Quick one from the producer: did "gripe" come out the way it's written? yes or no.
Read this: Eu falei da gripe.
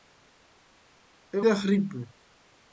yes